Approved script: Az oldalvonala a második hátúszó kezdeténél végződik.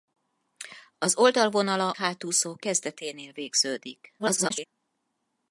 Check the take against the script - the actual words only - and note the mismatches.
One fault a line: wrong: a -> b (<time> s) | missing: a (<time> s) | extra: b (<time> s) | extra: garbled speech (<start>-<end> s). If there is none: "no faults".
missing: a második (1.9 s)
extra: garbled speech (4.2-4.7 s)